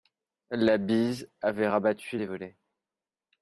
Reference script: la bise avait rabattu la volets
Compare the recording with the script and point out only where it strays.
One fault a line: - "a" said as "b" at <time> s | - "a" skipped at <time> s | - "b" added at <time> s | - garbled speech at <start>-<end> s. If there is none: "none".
- "la" said as "les" at 2.1 s